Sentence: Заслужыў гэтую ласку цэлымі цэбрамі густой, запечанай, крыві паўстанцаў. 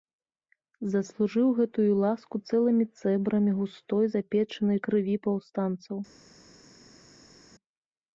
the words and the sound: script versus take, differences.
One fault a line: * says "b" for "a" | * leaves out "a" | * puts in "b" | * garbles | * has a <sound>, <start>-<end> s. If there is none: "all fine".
all fine